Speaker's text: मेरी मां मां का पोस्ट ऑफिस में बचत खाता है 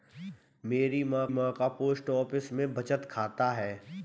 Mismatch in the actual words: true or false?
false